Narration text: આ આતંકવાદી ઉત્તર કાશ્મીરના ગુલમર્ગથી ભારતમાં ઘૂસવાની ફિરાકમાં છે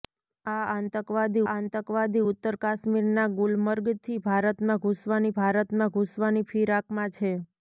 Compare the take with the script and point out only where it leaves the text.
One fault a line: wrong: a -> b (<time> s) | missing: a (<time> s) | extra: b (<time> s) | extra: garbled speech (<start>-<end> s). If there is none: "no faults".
extra: આતંકવાદી (1.5 s)
extra: ભારતમાં ઘૂસવાની (5.3 s)